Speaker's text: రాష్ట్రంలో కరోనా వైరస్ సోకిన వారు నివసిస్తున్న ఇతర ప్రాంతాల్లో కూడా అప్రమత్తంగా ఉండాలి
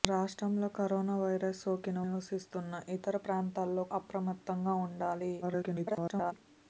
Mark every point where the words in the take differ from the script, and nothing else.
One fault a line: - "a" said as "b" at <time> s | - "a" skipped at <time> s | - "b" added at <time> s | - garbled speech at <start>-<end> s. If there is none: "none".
- "వారు" skipped at 2.0 s
- "కూడా" skipped at 3.8 s
- garbled speech at 5.4-6.3 s